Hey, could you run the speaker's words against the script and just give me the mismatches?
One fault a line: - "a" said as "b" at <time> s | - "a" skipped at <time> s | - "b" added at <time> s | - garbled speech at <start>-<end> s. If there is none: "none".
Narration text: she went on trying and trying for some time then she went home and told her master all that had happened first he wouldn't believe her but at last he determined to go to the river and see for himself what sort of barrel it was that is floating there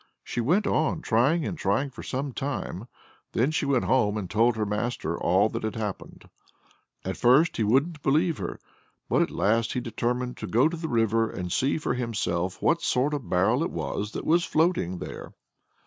- "at" added at 7.0 s
- "is" said as "was" at 14.2 s